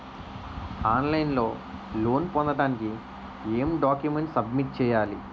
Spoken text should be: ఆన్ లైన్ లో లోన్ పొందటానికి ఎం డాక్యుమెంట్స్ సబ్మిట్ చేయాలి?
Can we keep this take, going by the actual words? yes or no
yes